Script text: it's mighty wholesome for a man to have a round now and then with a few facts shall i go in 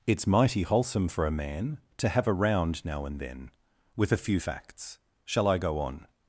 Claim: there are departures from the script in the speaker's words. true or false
true